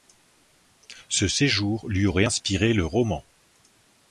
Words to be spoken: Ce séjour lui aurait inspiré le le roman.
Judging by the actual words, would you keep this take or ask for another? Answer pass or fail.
fail